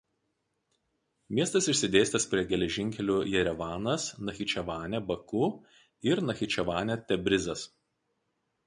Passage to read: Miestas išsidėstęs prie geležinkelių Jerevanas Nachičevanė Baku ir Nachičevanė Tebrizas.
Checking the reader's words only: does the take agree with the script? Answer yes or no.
yes